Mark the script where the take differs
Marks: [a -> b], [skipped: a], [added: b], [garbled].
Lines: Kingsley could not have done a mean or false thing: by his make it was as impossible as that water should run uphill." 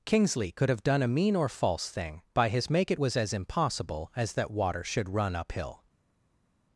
Kingsley could [skipped: not] have done a mean or false thing: by his make it was as impossible as that water should run uphill."